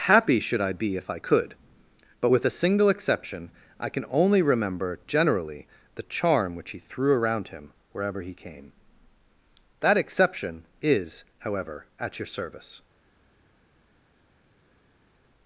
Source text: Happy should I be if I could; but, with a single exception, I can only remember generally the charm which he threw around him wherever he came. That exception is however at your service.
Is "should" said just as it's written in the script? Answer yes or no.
yes